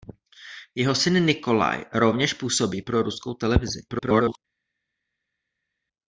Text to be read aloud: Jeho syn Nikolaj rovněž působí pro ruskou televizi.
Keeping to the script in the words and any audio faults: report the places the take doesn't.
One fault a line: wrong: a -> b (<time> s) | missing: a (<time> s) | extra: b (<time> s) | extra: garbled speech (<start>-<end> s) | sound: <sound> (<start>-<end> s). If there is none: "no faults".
extra: garbled speech (3.9-4.4 s)